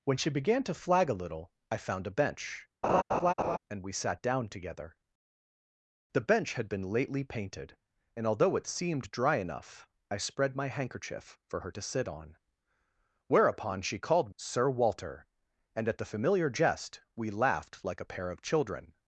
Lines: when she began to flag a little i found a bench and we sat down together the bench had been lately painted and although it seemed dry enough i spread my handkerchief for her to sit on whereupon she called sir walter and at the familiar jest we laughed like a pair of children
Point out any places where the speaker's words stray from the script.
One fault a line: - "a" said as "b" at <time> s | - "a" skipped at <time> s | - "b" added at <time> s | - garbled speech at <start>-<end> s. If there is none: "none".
none